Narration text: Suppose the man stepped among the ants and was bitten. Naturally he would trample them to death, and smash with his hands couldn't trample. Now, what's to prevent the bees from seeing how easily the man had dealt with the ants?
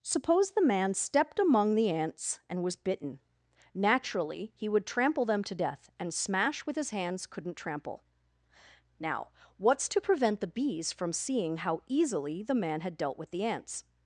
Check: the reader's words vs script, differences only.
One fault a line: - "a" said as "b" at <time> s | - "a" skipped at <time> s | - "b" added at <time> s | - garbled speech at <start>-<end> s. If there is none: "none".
none